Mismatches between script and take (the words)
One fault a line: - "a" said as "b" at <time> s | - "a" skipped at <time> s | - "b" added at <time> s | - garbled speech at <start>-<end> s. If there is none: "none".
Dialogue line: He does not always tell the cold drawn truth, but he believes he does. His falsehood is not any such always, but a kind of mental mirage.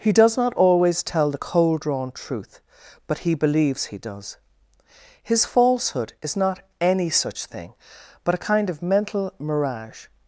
- "always" said as "thing" at 7.5 s